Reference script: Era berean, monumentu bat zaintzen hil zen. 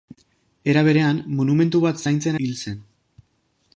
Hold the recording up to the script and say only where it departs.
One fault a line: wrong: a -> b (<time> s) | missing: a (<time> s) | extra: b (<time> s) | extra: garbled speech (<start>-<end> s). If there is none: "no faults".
no faults